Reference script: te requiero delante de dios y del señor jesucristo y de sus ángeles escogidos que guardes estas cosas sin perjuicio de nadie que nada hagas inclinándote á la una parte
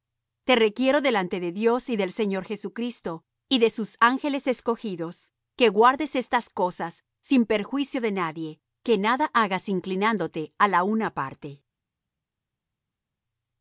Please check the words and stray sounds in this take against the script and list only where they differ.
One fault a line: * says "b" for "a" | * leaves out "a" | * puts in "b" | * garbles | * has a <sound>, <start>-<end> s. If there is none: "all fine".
all fine